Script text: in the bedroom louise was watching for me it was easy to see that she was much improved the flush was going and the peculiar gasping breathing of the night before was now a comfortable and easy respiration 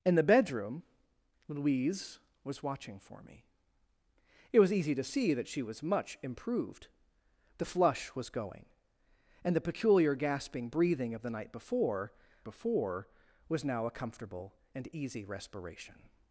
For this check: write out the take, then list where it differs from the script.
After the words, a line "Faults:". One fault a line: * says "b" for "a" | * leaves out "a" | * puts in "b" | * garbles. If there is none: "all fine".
in the bedroom louise was watching for me it was easy to see that she was much improved the flush was going and the peculiar gasping breathing of the night before before was now a comfortable and easy respiration
Faults:
* puts in "before"